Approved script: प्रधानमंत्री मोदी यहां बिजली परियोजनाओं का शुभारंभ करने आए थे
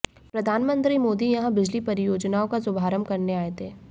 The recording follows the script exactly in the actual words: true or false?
true